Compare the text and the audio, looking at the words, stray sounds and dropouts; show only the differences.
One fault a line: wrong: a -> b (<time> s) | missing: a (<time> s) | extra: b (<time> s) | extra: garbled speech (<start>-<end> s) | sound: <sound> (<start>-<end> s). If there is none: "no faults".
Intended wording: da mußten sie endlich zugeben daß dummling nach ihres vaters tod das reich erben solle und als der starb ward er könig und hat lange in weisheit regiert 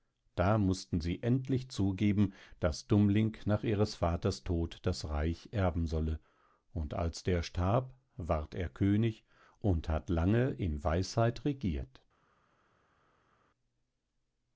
no faults